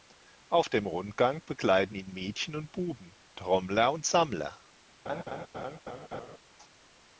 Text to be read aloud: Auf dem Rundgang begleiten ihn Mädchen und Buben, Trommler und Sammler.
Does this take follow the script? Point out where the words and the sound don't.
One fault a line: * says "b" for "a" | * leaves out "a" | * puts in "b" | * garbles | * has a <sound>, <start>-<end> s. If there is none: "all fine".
* has a laugh, 5.1-6.4 s